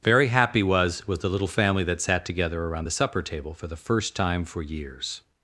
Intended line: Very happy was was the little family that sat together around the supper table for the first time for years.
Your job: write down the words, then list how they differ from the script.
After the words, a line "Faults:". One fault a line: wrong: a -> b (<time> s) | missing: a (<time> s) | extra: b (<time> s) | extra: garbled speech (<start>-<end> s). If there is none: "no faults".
Very happy was was the little family that sat together around the supper table for the first time for years.
Faults:
no faults